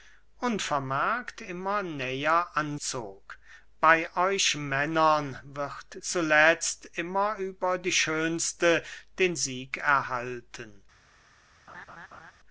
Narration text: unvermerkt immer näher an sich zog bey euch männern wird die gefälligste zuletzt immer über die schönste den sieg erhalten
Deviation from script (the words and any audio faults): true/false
true